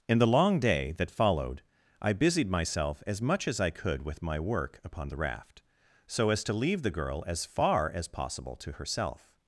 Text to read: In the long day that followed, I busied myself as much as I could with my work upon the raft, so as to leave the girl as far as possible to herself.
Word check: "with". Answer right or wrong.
right